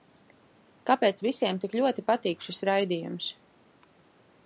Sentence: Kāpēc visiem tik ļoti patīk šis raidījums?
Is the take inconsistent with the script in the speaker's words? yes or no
no